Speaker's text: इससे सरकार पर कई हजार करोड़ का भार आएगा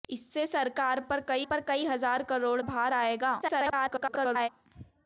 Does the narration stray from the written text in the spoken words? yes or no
yes